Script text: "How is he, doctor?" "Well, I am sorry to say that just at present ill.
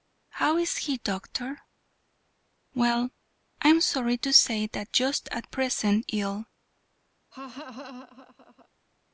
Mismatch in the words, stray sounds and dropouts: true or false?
true